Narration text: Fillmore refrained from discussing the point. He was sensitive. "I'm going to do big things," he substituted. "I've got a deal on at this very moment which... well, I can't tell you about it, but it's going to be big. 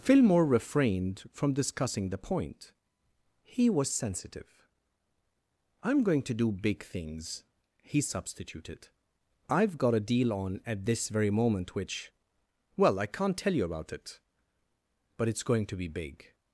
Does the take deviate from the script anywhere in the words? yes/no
no